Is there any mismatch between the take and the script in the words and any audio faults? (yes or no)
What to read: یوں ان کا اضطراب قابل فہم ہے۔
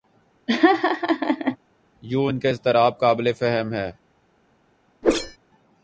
yes